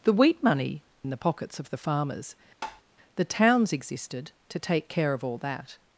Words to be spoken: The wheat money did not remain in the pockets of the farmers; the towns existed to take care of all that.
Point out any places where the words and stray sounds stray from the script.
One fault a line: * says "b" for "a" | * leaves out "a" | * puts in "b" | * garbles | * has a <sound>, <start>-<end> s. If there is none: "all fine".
* leaves out "did not remain"
* has a tap, 2.6-2.8 s